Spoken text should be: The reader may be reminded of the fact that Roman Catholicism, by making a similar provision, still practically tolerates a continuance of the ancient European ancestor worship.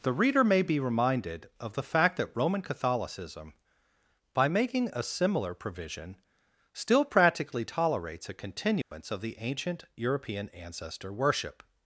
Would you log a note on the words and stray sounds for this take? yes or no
yes